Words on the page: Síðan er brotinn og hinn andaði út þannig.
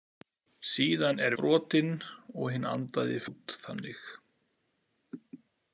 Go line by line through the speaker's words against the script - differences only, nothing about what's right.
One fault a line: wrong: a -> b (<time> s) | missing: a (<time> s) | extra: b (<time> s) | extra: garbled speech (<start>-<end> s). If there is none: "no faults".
no faults